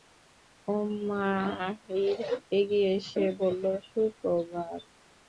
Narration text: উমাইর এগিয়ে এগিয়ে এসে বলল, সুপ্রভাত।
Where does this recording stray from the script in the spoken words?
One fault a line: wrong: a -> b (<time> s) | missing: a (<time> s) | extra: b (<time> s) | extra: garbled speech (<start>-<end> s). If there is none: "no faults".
missing: এগিয়ে (2.9 s)